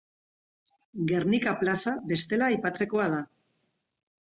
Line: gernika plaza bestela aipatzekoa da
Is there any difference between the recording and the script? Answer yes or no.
no